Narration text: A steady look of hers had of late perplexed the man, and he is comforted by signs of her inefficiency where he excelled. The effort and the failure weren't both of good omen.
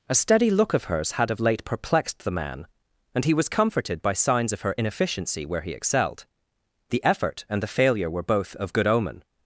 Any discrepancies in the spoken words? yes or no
yes